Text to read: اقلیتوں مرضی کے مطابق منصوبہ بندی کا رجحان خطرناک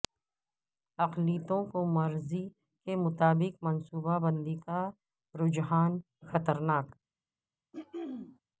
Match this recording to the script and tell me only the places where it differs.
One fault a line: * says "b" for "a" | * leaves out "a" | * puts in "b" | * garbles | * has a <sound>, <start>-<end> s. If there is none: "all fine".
* puts in "کو"
* has a throat clearing, 7.7-8.4 s